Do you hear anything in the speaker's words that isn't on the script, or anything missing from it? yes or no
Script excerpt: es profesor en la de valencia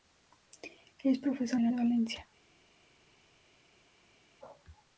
no